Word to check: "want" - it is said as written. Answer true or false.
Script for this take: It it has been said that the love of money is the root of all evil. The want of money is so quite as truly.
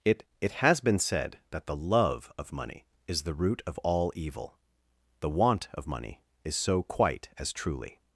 true